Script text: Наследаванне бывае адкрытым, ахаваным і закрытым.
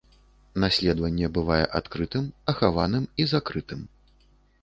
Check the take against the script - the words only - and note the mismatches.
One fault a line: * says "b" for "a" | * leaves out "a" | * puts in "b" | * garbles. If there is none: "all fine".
all fine